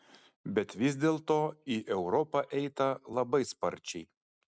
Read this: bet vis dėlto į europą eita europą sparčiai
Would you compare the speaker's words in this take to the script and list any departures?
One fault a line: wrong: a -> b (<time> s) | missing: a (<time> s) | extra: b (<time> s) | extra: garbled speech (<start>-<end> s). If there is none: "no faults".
wrong: europą -> labai (3.2 s)